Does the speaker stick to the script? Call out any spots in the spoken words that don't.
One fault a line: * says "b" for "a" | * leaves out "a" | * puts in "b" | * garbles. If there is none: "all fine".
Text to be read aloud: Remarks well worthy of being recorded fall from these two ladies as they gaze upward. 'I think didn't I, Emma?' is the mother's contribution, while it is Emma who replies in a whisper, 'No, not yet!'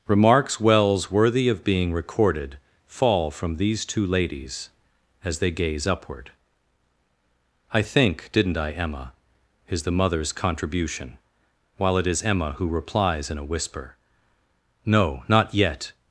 * says "wells" for "well"